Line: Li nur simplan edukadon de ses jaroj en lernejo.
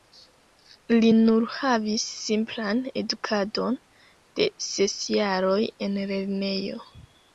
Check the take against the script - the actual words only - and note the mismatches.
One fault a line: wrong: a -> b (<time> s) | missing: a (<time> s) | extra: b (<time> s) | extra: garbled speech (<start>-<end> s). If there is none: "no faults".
extra: havis (1.5 s)